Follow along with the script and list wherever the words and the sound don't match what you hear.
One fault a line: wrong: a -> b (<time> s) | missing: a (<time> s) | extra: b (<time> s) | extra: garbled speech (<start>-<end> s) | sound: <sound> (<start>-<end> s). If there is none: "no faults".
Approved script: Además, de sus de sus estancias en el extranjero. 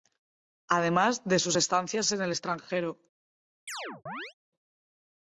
missing: de sus (1.6 s)
sound: chirp (3.7-4.3 s)